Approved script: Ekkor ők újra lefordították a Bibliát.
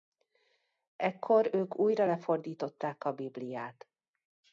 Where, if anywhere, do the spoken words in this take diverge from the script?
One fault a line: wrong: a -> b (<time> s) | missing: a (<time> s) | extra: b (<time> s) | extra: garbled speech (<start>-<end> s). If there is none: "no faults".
no faults